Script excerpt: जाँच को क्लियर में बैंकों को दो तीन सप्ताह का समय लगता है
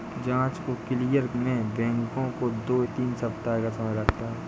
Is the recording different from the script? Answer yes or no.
no